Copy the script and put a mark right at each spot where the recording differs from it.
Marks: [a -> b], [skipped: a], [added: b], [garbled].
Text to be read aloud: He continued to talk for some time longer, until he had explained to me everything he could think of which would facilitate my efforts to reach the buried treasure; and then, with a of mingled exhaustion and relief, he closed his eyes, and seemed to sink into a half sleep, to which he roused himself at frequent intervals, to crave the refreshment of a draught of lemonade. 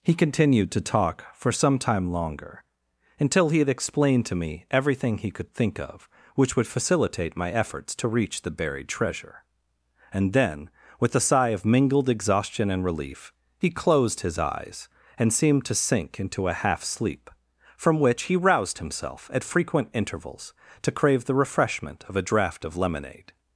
He continued to talk for some time longer, until he had explained to me everything he could think of which would facilitate my efforts to reach the buried treasure; and then, with a [added: sigh] of mingled exhaustion and relief, he closed his eyes, and seemed to sink into a half sleep, [to -> from] which he roused himself at frequent intervals, to crave the refreshment of a draught of lemonade.